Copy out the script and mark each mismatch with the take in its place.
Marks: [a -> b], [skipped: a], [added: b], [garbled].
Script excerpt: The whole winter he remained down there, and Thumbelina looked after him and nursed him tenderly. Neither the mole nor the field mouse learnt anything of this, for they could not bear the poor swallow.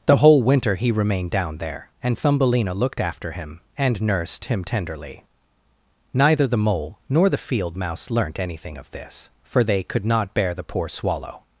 The whole winter he remained down there, and Thumbelina looked after him and nursed him tenderly. Neither the mole nor the field mouse learnt anything of this, for they could not bear the poor swallow.